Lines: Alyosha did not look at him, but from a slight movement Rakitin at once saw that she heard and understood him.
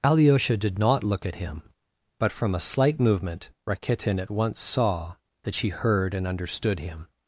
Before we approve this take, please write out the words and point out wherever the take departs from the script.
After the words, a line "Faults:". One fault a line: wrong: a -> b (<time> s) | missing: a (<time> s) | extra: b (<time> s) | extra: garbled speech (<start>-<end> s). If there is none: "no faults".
Alyosha did not look at him, but from a slight movement Rakitin at once saw that she heard and understood him.
Faults:
no faults